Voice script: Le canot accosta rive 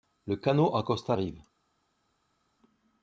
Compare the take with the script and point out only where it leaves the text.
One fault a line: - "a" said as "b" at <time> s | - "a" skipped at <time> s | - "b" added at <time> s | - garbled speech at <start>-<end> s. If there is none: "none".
none